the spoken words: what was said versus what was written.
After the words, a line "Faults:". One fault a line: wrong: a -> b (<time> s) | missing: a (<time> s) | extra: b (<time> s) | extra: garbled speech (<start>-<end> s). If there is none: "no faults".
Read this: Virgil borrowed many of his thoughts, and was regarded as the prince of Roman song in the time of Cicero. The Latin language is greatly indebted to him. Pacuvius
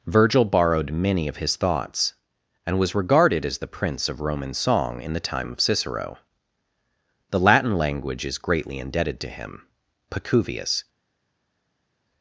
Virgil borrowed many of his thoughts, and was regarded as the prince of Roman song in the time of Cicero. The Latin language is greatly indebted to him. Pacuvius
Faults:
no faults